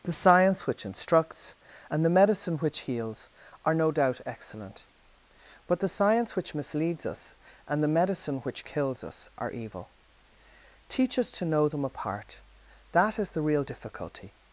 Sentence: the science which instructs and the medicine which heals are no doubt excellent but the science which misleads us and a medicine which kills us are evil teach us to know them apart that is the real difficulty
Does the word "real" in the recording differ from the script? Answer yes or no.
no